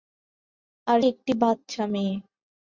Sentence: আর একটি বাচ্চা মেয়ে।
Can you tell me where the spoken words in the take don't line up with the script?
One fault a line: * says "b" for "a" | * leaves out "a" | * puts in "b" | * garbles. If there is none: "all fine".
all fine